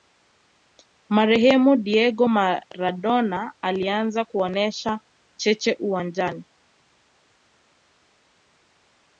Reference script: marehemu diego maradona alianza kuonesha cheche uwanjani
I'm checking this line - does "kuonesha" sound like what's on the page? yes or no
yes